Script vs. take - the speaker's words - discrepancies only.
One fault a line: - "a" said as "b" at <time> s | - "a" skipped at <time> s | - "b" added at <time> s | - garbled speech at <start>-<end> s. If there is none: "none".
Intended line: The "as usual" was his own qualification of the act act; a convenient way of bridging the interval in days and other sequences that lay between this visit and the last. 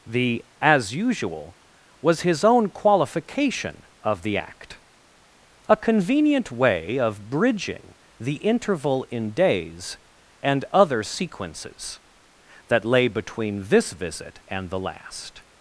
- "act" skipped at 4.8 s